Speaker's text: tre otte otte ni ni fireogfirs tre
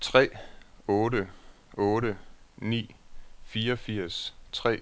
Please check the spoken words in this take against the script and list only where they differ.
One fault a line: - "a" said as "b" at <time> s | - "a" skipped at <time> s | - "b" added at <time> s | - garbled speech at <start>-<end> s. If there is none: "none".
- "ni" skipped at 2.9 s